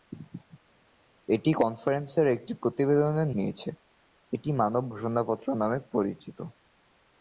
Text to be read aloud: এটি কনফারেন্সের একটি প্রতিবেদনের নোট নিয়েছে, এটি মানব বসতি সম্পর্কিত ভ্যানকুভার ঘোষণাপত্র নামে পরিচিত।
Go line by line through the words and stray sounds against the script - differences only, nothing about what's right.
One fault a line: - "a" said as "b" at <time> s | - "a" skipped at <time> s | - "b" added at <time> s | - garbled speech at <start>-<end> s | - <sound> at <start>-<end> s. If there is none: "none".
- "নোট" skipped at 3.3 s
- "বসতি সম্পর্কিত ভ্যানকুভার" skipped at 4.8 s